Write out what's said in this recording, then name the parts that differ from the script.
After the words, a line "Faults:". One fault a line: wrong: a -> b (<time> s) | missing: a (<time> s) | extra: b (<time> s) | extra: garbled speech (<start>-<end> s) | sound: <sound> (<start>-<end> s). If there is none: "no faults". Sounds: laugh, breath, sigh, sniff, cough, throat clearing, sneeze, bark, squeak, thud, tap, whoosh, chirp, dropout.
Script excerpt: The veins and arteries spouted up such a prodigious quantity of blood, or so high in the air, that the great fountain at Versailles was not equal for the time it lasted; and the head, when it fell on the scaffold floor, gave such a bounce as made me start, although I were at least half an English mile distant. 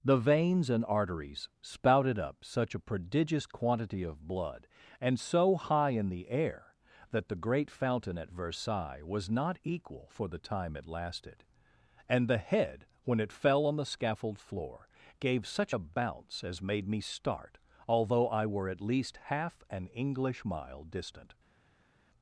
The veins and arteries spouted up such a prodigious quantity of blood, and so high in the air, that the great fountain at Versailles was not equal for the time it lasted; and the head, when it fell on the scaffold floor, gave such a bounce as made me start, although I were at least half an English mile distant.
Faults:
wrong: or -> and (5.0 s)